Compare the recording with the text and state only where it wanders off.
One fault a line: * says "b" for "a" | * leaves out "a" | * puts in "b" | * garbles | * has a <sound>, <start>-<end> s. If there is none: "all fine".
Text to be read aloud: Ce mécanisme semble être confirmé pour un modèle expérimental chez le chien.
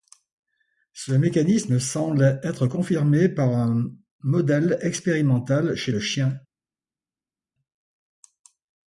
* says "par" for "pour"